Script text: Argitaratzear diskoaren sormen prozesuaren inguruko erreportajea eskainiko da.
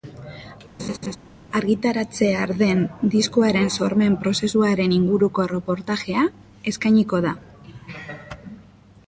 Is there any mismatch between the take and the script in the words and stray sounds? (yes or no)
yes